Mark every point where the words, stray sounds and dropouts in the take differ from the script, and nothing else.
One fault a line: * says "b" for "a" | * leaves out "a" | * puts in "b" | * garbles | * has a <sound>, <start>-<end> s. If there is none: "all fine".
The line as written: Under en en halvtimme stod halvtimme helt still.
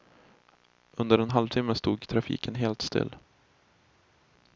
* leaves out "en"
* says "trafiken" for "halvtimme"